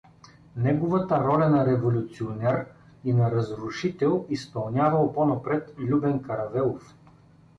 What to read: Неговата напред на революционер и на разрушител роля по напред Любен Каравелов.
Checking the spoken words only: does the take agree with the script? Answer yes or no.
no